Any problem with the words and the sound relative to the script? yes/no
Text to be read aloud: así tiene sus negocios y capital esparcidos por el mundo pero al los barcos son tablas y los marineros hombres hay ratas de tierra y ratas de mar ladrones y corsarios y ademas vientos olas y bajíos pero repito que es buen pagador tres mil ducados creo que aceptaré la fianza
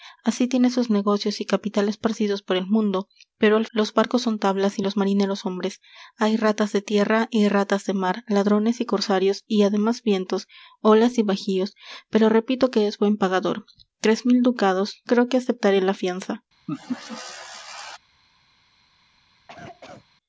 yes